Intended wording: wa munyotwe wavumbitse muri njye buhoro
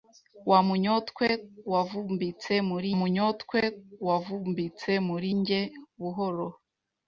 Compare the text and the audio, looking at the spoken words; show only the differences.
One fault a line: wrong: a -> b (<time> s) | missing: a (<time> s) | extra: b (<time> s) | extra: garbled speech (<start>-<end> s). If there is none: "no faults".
extra: munyotwe wavumbitse muri (3.0 s)